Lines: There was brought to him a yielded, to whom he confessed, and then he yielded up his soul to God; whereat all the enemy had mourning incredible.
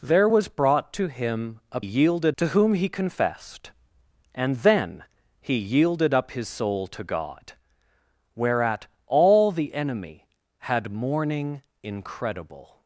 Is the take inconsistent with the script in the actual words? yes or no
no